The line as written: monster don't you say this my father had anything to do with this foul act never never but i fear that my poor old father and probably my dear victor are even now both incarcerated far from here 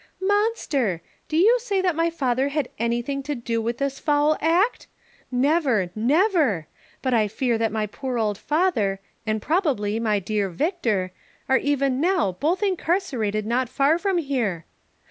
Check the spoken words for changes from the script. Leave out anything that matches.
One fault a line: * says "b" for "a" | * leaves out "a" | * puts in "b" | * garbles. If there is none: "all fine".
* says "do" for "don't"
* says "that" for "this"
* puts in "not"